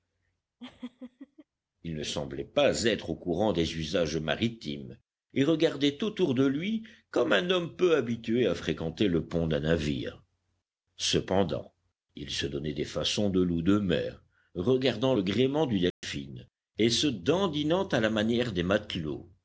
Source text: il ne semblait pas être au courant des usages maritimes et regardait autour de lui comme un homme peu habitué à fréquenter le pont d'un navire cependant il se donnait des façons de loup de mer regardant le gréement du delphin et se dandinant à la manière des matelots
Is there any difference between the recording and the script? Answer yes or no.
no